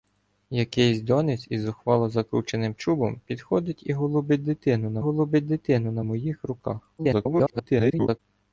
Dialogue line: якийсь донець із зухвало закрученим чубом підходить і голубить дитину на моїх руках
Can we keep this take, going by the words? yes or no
no